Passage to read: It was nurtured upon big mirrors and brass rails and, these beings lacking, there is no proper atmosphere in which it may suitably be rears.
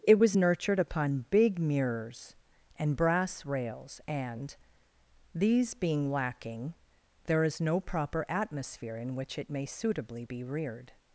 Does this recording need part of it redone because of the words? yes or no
yes